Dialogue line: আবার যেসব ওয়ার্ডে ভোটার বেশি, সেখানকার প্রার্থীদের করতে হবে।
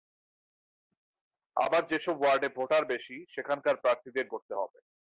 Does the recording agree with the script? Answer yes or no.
yes